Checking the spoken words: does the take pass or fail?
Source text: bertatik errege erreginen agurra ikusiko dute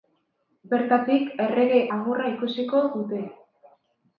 fail